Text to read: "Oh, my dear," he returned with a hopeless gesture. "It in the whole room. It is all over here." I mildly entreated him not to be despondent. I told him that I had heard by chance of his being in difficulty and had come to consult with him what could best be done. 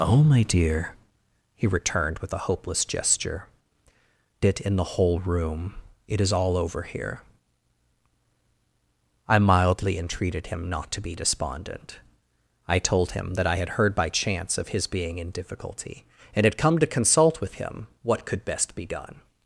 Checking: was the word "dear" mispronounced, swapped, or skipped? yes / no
no